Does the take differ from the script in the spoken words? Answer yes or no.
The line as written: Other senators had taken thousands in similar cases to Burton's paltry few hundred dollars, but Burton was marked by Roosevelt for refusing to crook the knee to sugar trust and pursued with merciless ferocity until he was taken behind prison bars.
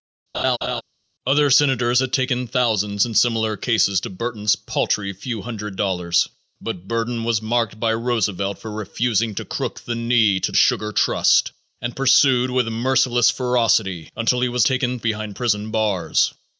no